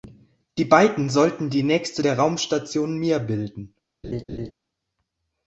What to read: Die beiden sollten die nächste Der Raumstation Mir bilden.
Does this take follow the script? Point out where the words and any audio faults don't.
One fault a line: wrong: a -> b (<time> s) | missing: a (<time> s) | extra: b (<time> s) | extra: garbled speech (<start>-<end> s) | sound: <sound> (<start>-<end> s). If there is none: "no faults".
sound: laugh (4.0-4.5 s)